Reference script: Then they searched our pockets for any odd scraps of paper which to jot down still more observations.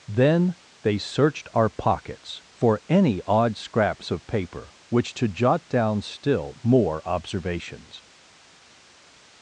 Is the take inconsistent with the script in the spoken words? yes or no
no